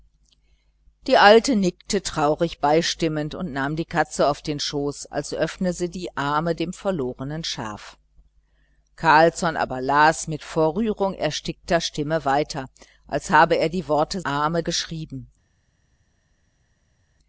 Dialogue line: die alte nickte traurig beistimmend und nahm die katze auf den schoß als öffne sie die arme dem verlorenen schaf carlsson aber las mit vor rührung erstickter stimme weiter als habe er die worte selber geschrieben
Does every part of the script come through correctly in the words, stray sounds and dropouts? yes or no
no